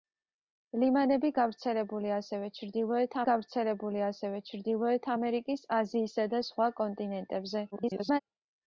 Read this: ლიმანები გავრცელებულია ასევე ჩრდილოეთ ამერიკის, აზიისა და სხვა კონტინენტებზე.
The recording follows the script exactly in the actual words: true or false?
false